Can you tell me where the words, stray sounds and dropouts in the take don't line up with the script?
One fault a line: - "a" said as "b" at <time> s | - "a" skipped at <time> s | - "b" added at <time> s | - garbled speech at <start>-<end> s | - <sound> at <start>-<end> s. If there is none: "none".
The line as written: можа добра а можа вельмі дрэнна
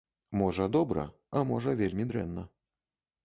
none